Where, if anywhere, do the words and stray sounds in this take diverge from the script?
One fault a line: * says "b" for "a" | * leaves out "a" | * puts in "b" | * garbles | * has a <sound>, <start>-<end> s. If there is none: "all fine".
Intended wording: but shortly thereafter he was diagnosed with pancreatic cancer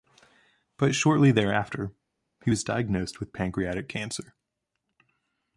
all fine